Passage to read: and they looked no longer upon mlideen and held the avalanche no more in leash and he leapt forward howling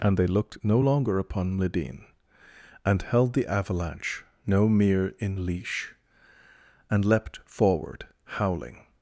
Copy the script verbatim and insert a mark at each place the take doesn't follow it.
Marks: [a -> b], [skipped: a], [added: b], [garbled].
and they looked no longer upon mlideen and held the avalanche no [more -> mere] in leash and [skipped: he] leapt forward howling